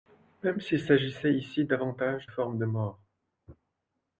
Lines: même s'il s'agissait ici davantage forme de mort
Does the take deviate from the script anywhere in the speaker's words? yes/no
no